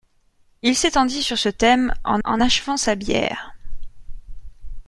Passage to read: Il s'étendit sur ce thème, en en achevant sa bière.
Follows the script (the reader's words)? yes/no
yes